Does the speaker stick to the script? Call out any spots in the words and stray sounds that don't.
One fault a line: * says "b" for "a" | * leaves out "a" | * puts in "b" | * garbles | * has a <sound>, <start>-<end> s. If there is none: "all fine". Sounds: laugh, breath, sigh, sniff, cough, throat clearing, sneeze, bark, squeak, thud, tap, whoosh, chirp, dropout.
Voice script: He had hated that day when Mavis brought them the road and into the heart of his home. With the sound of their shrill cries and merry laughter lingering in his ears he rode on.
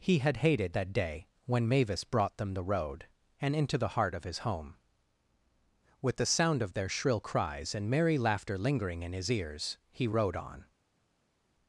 all fine